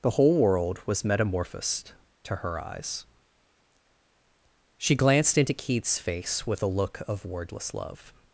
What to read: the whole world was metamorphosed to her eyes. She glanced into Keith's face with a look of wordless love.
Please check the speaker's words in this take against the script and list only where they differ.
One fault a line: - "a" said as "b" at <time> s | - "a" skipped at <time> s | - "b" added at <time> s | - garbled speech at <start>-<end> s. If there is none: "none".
none